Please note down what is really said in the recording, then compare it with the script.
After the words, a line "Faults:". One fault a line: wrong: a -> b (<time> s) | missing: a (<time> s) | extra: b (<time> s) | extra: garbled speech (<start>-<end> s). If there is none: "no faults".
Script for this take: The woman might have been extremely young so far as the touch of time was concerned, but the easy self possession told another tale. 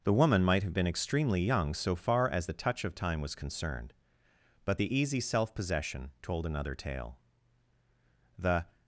The woman might have been extremely young so far as the touch of time was concerned, but the easy self possession told another tale. The
Faults:
extra: The (8.4 s)